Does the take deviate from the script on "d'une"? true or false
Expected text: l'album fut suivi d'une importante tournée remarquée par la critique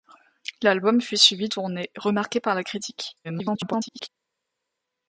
true